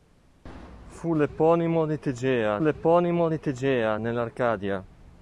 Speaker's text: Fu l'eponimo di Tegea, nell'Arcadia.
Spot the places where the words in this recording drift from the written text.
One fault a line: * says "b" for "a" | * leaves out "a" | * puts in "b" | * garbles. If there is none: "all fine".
* puts in "l'eponimo di Tegea"